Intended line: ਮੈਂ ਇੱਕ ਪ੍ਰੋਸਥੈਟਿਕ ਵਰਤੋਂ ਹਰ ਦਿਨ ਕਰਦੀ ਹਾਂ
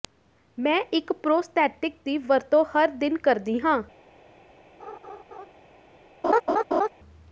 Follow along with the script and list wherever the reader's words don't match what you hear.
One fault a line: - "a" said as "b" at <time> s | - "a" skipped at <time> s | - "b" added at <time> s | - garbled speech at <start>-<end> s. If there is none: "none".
- "ਦੀ" added at 2.0 s